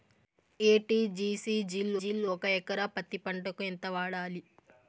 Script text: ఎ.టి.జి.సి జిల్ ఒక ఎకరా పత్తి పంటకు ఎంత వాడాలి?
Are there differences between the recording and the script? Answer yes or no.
yes